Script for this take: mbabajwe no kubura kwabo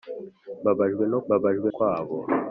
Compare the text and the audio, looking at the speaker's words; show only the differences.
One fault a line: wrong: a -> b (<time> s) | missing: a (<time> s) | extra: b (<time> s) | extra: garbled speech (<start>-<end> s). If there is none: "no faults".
wrong: kubura -> mbabajwe (1.3 s)